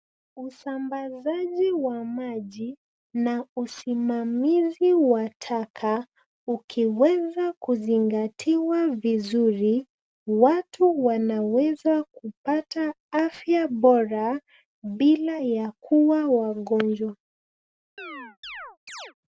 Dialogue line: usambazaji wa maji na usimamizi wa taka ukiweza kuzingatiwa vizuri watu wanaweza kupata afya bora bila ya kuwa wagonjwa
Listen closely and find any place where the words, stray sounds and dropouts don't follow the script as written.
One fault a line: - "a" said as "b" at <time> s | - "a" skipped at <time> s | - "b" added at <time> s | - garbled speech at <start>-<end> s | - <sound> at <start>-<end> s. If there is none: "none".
- chirp at 18.0-19.1 s